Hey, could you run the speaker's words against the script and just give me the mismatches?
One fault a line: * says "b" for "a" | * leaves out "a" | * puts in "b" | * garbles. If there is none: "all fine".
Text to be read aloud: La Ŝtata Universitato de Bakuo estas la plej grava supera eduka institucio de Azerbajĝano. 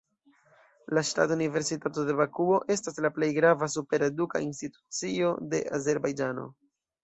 all fine